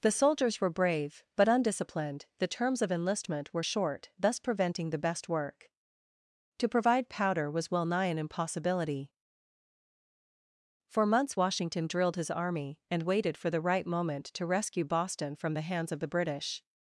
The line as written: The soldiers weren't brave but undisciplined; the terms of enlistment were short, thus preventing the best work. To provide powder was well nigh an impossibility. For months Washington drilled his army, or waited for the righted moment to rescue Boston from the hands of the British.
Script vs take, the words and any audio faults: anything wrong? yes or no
yes